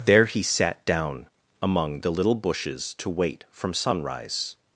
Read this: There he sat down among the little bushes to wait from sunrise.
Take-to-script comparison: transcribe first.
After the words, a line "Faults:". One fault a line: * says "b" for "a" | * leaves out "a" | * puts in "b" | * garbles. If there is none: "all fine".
There he sat down among the little bushes to wait from sunrise.
Faults:
all fine